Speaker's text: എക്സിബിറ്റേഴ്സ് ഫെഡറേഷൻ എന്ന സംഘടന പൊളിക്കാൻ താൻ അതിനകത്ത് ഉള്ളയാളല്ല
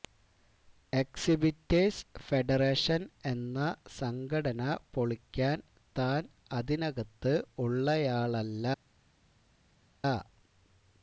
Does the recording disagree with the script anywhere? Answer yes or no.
no